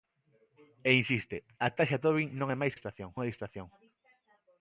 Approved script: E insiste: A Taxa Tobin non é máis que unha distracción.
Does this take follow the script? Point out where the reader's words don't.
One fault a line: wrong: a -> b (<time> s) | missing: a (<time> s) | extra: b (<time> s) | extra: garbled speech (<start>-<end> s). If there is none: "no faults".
wrong: que -> distracción (2.7 s)